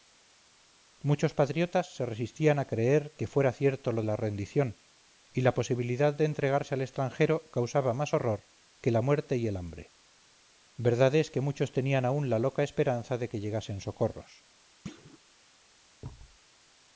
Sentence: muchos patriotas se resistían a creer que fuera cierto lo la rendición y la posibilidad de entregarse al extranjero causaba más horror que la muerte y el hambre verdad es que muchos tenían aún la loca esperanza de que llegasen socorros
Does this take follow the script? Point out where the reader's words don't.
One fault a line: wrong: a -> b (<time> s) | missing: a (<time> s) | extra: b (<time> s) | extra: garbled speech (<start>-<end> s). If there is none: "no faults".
no faults